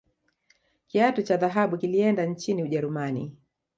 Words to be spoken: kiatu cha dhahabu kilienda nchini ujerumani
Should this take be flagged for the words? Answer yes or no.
no